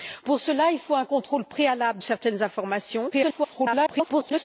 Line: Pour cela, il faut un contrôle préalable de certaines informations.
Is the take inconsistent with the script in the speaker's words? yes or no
yes